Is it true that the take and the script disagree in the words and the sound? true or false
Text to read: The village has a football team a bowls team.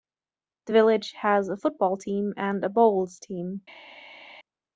true